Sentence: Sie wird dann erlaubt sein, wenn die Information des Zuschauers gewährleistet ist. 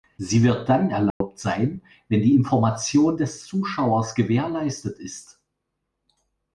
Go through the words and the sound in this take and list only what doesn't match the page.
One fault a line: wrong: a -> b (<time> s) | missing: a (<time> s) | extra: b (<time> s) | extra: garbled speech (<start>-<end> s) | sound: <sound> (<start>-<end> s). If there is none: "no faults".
sound: dropout (1.1-1.2 s)